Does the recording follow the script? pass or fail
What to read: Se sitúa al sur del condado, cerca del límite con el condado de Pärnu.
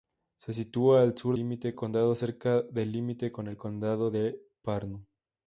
fail